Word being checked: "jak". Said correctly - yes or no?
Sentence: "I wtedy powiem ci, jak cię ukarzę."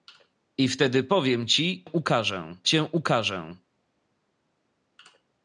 no